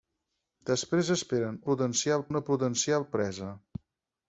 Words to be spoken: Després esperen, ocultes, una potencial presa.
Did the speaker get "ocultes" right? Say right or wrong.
wrong